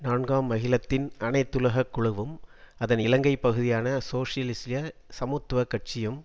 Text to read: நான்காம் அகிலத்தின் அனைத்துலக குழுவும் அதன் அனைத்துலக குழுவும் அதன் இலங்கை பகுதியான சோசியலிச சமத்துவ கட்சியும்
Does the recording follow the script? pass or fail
fail